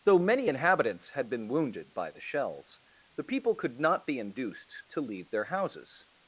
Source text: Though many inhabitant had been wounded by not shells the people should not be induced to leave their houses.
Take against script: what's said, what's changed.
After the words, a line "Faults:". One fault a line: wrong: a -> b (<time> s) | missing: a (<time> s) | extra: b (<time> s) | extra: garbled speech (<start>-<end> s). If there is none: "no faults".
Though many inhabitants had been wounded by the shells the people could not be induced to leave their houses.
Faults:
wrong: inhabitant -> inhabitants (0.5 s)
wrong: not -> the (2.1 s)
wrong: should -> could (3.6 s)